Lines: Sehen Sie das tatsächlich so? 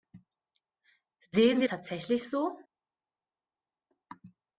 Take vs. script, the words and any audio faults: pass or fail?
fail